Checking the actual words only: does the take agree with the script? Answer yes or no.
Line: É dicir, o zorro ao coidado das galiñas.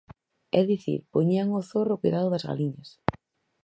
no